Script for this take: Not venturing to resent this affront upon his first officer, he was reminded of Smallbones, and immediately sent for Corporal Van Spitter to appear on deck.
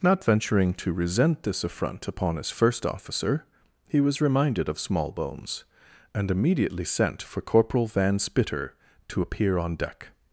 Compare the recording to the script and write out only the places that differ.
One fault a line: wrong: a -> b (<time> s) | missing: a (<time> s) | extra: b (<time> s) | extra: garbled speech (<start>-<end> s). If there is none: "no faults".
no faults